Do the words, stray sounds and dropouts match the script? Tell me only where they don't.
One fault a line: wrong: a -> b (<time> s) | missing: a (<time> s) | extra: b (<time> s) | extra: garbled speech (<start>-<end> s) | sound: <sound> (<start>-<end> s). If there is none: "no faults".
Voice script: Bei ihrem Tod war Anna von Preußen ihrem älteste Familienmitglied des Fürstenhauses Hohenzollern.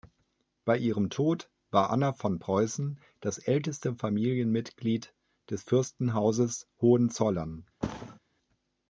wrong: ihrem -> das (3.2 s)
sound: thud (7.8-8.2 s)